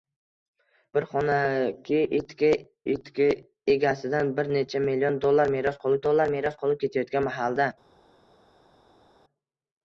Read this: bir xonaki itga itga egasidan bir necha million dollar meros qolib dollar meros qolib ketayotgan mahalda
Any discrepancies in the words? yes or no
no